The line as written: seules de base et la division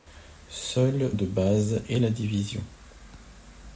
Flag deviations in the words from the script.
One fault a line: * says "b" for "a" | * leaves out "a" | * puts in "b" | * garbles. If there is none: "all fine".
all fine